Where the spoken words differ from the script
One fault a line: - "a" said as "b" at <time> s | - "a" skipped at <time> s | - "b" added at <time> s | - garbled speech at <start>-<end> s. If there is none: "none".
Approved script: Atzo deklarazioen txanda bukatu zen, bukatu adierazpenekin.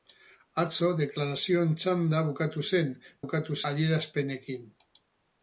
none